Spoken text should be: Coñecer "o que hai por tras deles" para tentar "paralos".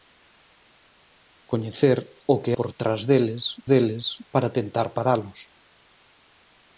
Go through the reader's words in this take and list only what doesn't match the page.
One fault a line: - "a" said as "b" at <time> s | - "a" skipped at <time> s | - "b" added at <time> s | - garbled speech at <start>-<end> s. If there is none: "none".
- "hai" skipped at 2.5 s
- "deles" added at 3.7 s